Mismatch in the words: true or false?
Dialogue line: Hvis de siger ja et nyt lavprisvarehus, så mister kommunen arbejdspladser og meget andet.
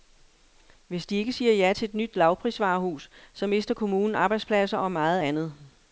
true